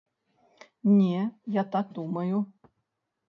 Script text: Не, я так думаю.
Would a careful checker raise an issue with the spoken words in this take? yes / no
no